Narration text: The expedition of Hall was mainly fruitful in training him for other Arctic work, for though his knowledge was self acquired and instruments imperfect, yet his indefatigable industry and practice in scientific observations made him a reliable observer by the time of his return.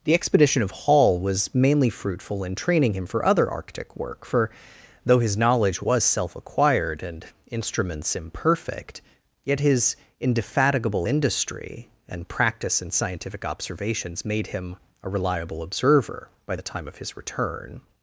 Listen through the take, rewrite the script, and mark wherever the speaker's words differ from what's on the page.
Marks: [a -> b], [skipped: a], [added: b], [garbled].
The expedition of Hall was mainly fruitful in training him for other Arctic work, for though his knowledge was self acquired and instruments imperfect, yet his indefatigable industry and practice in scientific observations made him a reliable observer by the time of his return.